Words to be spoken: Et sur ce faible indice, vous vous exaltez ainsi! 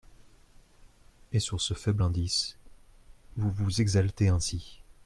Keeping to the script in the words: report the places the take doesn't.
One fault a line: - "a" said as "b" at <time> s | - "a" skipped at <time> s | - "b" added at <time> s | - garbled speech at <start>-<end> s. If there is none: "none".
none